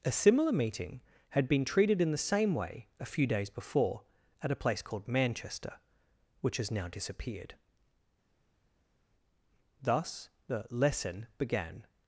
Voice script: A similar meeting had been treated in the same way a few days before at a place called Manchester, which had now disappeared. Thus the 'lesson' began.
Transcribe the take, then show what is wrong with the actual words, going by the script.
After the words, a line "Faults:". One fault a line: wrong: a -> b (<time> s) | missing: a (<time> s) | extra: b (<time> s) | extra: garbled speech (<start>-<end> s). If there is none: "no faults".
A similar meeting had been treated in the same way a few days before at a place called Manchester, which has now disappeared. Thus the 'lesson' began.
Faults:
wrong: had -> has (6.6 s)